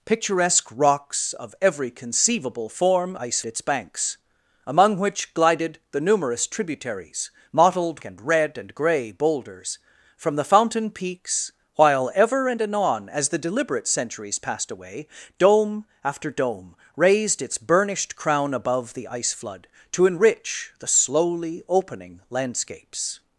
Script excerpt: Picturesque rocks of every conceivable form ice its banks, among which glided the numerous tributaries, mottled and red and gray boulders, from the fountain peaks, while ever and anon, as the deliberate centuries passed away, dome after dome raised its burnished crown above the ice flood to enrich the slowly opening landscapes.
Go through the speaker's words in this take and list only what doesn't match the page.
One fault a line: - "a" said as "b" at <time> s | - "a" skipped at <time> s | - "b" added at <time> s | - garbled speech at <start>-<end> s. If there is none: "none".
none